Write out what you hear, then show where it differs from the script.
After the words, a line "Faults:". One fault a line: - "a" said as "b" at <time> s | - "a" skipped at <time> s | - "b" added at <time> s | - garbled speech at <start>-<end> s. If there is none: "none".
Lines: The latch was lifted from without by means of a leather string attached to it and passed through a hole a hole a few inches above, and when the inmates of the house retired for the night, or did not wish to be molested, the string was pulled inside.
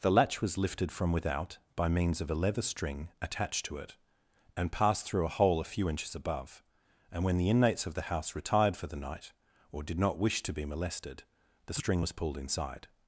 The latch was lifted from without by means of a leather string attached to it and passed through a hole a few inches above, and when the inmates of the house retired for the night, or did not wish to be molested, the string was pulled inside.
Faults:
- "hole a" skipped at 5.7 s